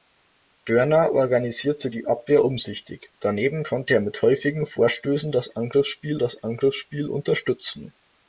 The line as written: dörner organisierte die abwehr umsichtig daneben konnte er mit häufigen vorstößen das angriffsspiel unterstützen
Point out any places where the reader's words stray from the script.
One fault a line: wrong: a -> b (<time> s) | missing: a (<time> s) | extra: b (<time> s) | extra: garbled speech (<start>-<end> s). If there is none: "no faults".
extra: das angriffsspiel (6.2 s)